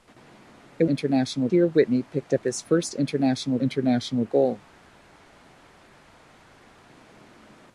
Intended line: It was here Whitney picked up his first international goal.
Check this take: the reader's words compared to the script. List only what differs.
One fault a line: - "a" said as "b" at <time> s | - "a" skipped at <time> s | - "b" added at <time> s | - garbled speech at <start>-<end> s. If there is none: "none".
- "was" said as "international" at 0.8 s
- "international" added at 3.6 s